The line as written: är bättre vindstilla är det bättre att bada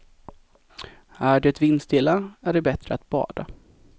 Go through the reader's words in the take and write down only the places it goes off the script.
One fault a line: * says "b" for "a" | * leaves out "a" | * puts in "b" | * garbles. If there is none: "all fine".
* says "det" for "bättre"